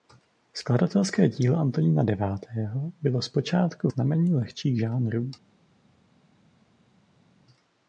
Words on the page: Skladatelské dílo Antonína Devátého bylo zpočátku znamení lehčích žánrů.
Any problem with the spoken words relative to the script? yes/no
no